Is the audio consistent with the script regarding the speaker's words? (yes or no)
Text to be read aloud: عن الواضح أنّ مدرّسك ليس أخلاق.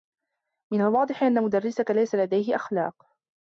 no